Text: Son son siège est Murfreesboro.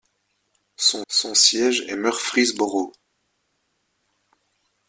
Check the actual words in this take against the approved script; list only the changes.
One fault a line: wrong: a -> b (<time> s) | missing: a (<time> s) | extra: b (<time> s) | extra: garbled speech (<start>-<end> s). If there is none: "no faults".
no faults